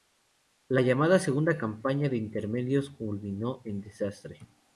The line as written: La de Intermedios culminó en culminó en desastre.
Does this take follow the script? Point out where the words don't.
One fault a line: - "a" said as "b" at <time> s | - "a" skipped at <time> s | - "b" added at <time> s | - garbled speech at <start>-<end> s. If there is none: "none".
- "llamada Segunda Campaña" added at 0.8 s
- "culminó en" skipped at 3.8 s